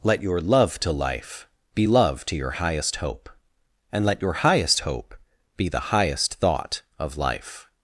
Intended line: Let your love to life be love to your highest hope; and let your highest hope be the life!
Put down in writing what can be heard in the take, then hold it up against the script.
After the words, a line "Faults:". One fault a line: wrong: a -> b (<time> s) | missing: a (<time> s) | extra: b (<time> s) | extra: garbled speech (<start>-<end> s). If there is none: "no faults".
Let your love to life be love to your highest hope; and let your highest hope be the highest thought of life!
Faults:
extra: highest thought of (5.9 s)